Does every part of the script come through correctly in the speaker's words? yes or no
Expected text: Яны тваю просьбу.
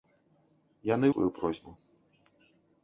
yes